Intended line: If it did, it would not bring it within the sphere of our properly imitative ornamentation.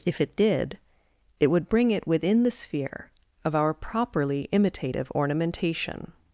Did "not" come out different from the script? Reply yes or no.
yes